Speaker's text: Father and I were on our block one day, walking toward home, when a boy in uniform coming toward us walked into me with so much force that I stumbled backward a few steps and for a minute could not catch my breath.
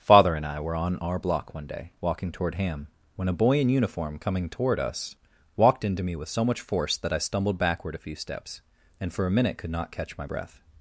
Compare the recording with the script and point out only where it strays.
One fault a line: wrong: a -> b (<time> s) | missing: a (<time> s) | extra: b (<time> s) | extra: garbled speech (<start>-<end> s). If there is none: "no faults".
wrong: home -> ham (2.5 s)